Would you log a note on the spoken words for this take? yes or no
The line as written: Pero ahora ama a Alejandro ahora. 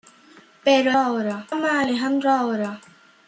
no